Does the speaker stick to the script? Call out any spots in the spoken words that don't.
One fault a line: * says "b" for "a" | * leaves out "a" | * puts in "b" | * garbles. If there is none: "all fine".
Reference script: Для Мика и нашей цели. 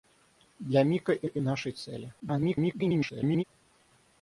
* puts in "и"
* garbles